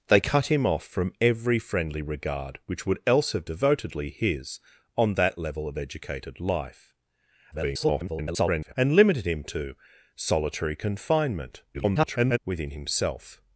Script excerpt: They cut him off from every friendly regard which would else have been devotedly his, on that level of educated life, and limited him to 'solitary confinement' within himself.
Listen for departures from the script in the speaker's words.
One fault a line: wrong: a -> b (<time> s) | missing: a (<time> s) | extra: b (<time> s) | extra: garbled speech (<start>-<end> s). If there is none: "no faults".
missing: been (3.5 s)
extra: garbled speech (7.5-8.7 s)
extra: garbled speech (11.7-12.4 s)